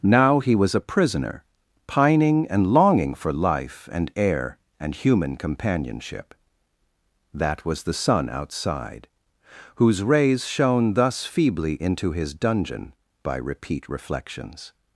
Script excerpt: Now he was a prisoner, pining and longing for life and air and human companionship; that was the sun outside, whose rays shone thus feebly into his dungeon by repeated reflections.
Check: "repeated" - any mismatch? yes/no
yes